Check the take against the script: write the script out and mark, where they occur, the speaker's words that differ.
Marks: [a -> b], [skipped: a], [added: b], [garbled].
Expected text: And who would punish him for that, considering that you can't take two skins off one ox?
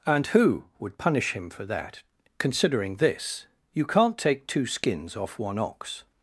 And who would punish him for that, considering [that -> this] you can't take two skins off one ox?